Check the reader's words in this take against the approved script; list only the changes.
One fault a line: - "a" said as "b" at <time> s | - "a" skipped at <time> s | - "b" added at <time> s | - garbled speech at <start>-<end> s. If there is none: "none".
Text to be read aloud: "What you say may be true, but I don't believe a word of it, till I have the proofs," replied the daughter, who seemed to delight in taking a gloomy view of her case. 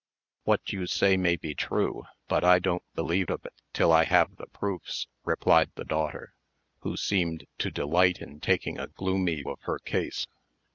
- "a word" skipped at 3.3 s
- "view" skipped at 9.4 s